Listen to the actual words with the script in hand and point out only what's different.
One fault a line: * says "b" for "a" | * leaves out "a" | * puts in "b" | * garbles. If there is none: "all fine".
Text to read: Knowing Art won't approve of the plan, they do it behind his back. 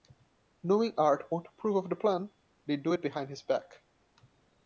all fine